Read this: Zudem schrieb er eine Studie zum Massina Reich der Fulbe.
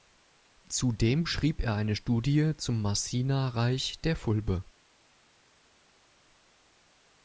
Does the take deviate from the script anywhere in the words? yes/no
no